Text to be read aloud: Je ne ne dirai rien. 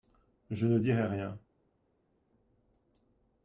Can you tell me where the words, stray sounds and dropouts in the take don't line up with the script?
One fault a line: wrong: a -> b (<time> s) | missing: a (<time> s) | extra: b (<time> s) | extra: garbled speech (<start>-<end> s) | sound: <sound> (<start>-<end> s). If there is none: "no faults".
missing: ne (0.8 s)